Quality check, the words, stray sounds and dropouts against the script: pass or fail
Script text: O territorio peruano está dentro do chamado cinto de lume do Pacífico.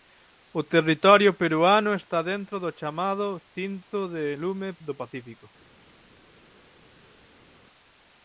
pass